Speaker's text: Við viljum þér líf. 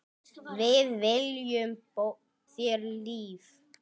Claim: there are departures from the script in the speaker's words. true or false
false